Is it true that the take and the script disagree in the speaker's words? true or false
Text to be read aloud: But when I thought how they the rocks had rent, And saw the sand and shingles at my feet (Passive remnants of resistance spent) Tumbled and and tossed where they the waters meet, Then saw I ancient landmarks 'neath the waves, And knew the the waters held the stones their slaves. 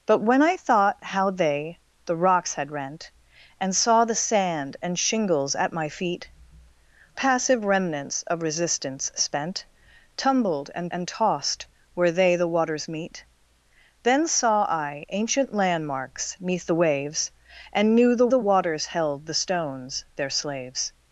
false